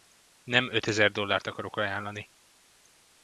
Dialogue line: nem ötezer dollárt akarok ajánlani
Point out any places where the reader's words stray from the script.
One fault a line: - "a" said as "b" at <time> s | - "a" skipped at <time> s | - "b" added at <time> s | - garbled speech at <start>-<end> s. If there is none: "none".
none